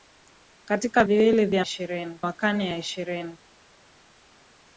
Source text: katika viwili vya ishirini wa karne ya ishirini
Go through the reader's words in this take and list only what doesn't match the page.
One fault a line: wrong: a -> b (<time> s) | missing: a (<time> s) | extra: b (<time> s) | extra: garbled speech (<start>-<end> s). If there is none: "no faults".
no faults